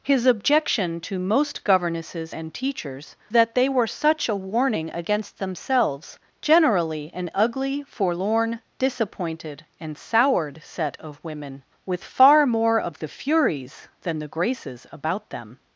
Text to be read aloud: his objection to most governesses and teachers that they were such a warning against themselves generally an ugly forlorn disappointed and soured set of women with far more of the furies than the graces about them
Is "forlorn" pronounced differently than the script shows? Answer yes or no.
no